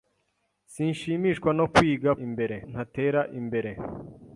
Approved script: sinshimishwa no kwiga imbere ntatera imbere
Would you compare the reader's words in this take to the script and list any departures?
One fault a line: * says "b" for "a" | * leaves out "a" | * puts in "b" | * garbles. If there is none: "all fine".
all fine